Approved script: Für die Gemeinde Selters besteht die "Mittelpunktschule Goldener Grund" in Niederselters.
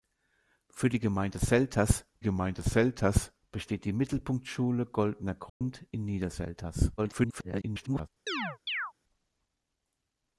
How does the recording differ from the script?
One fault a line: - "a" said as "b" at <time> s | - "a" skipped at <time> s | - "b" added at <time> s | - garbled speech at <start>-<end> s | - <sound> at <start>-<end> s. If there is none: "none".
- "Gemeinde Selters" added at 2.2 s
- dropout at 5.5-5.6 s
- garbled speech at 7.0-8.1 s
- chirp at 8.3-8.9 s